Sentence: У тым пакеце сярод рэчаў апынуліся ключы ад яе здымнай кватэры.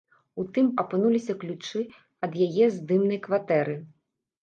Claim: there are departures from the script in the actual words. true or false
true